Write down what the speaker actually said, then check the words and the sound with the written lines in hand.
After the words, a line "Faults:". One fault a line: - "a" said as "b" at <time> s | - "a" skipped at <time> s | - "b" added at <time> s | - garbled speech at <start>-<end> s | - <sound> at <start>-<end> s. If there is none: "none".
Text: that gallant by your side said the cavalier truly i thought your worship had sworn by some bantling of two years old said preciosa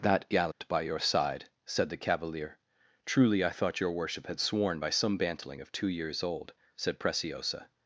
that gallant by your side said the cavalier truly i thought your worship had sworn by some bantling of two years old said preciosa
Faults:
- dropout at 0.5-0.6 s